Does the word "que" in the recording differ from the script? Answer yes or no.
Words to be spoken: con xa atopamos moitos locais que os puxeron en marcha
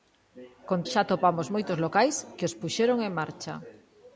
no